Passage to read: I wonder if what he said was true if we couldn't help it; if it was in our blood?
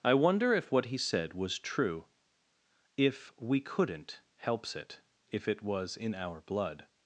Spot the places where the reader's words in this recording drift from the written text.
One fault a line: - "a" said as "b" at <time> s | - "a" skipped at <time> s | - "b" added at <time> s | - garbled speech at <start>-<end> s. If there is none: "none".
- "help" said as "helps" at 4.4 s